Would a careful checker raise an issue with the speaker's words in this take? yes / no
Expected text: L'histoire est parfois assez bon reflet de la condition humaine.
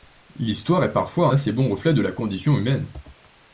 no